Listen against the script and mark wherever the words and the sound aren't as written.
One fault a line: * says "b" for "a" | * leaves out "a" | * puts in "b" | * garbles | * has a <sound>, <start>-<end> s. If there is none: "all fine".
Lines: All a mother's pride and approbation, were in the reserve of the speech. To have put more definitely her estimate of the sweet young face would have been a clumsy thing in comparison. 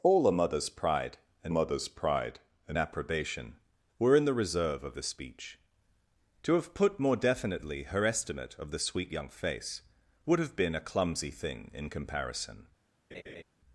* puts in "mother's pride and"
* has a laugh, 13.1-13.4 s